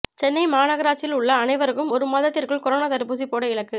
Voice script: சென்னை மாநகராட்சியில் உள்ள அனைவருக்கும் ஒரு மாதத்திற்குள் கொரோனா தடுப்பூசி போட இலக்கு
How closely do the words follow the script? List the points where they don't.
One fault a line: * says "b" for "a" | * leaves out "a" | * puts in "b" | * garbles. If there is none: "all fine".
all fine